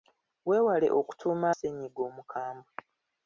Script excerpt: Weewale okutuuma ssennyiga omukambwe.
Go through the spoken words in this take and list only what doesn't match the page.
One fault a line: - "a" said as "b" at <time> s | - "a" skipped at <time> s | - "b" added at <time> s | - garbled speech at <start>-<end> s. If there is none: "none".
none